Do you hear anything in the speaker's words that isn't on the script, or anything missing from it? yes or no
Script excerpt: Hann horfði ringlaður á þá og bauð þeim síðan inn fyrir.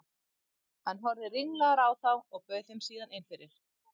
no